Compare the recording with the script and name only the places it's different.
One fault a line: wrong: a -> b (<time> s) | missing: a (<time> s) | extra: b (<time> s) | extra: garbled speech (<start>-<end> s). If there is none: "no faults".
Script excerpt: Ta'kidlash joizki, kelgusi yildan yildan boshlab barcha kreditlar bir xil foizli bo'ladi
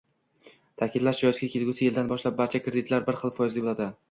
missing: yildan (2.1 s)